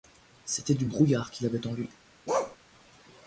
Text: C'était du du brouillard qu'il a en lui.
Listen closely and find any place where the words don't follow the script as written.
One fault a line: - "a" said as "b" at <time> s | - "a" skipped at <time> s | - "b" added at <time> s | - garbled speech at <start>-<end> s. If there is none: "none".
- "du" skipped at 0.8 s
- "a" said as "avait" at 1.5 s